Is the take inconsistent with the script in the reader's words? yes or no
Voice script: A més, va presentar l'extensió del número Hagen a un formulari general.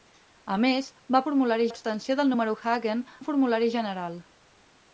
yes